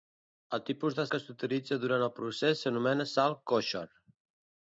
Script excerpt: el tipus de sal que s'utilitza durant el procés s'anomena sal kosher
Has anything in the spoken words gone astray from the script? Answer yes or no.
yes